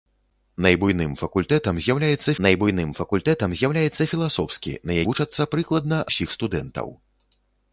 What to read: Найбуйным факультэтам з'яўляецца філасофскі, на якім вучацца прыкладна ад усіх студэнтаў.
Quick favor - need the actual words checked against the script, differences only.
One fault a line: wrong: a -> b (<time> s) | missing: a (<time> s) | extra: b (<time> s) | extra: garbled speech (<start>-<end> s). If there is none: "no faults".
extra: найбуйным факультэтам з'яўляецца (2.5 s)
missing: якім (5.0 s)
missing: ад (6.0 s)